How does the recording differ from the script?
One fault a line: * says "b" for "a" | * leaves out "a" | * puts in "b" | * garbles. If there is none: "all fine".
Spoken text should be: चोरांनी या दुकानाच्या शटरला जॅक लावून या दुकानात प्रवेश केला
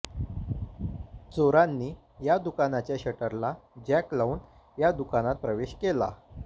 all fine